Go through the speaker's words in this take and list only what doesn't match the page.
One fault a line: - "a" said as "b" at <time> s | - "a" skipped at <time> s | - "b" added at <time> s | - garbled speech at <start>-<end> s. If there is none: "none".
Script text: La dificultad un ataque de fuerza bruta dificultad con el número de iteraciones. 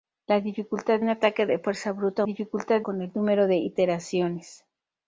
none